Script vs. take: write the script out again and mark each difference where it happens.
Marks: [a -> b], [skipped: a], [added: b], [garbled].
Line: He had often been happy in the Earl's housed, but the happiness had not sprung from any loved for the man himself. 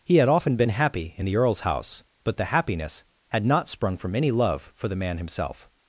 He had often been happy in the Earl's [housed, -> house] but the happiness had not sprung from any [loved -> love] for the man himself.